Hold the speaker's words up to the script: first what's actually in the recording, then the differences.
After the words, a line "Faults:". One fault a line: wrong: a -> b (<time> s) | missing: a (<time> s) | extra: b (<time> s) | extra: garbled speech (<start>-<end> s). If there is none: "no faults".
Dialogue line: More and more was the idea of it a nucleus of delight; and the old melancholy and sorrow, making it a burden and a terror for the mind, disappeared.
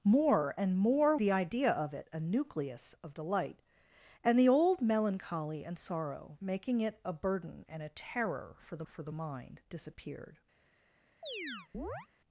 More and more the idea of it a nucleus of delight; and the old melancholy and sorrow, making it a burden and a terror for the for the mind, disappeared.
Faults:
missing: was (1.1 s)
extra: for the (8.8 s)